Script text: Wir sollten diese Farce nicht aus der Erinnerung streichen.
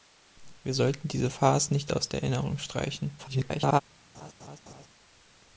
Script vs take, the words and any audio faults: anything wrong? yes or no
yes